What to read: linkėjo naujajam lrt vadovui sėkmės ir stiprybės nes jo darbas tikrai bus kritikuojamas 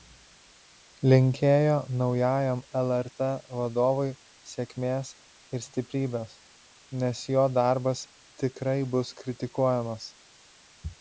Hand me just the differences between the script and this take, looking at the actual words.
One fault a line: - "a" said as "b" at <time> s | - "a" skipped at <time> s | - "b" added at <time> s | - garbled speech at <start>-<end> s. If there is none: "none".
none